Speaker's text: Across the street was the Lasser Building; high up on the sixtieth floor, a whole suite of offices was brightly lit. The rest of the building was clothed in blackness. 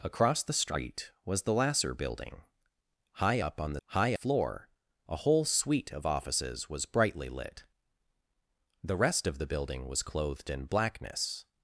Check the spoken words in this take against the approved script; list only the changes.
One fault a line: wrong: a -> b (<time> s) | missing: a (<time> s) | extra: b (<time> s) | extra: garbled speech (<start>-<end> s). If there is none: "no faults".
wrong: sixtieth -> high (3.9 s)